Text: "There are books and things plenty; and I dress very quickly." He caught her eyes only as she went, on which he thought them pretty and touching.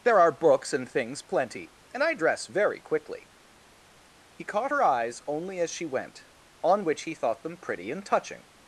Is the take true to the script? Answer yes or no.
yes